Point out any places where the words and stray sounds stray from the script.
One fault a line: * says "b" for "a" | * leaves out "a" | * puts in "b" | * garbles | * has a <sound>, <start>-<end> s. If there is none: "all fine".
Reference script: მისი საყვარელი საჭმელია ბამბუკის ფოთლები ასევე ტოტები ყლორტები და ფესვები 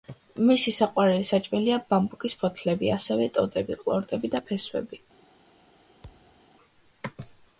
* has a thud, 6.0-6.4 s